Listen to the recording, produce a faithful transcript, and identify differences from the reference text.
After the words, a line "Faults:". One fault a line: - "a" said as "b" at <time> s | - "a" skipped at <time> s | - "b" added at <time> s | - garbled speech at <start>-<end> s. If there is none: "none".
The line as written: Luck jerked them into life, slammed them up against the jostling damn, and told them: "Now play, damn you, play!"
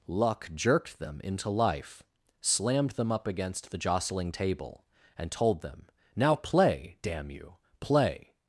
Luck jerked them into life, slammed them up against the jostling table, and told them: "Now play, damn you, play!"
Faults:
- "damn" said as "table" at 4.3 s